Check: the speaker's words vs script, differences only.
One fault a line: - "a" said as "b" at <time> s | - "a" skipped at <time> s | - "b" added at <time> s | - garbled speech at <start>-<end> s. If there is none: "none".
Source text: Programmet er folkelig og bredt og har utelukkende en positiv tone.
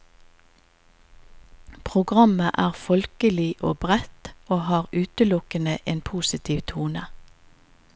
none